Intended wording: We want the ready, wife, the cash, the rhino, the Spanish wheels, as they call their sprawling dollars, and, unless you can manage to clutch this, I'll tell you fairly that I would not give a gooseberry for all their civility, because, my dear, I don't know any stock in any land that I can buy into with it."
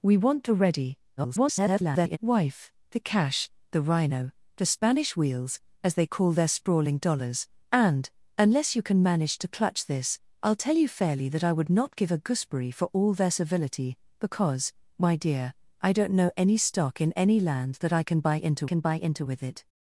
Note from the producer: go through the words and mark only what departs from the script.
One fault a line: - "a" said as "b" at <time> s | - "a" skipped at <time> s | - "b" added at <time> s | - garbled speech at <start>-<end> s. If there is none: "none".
- garbled speech at 1.2-2.2 s
- "can buy into" added at 18.6 s